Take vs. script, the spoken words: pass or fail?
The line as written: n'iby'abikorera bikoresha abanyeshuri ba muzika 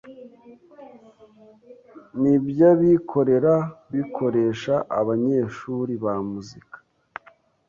pass